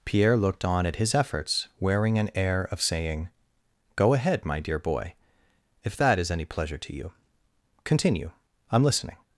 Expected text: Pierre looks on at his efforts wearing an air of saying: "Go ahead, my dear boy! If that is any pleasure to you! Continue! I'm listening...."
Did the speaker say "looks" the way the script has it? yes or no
no